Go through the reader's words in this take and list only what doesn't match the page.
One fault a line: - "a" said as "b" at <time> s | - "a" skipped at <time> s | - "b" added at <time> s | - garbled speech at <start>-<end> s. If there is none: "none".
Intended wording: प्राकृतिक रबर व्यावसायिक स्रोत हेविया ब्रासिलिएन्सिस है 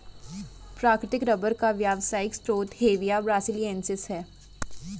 - "का" added at 1.5 s